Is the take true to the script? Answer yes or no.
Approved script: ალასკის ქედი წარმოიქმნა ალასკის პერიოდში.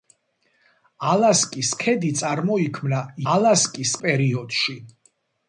yes